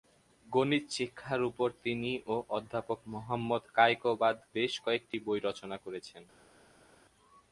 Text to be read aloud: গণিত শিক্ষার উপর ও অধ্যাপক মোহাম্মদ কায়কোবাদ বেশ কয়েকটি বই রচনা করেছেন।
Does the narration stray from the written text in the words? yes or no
yes